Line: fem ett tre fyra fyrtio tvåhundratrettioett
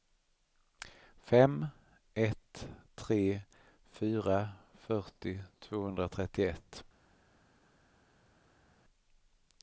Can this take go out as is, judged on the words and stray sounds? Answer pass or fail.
pass